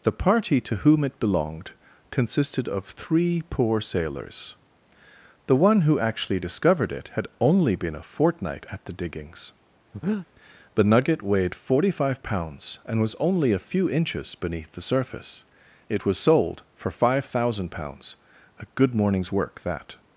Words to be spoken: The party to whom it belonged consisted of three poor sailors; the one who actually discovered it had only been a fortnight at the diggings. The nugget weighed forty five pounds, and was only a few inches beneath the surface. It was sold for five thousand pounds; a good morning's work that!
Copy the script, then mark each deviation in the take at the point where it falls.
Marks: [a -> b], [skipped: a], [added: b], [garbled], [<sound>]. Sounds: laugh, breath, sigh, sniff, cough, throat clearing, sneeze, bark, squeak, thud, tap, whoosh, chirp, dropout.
The party to whom it belonged consisted of three poor sailors; the one who actually discovered it had only been a fortnight at the diggings. [breath] The nugget weighed forty five pounds, and was only a few inches beneath the surface. It was sold for five thousand pounds; a good morning's work that!